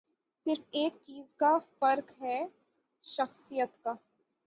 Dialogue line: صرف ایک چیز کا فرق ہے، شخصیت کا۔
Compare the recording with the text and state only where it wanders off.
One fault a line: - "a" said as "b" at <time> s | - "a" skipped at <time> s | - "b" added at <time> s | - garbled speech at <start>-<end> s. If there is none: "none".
none